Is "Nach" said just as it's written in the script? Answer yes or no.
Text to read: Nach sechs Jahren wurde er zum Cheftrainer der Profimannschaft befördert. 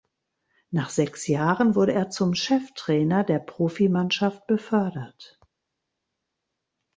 yes